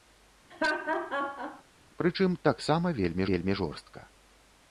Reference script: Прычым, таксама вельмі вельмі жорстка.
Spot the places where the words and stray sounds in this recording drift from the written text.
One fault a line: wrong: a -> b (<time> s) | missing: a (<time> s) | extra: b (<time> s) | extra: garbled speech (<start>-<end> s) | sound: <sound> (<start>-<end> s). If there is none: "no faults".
sound: laugh (0.5-1.6 s)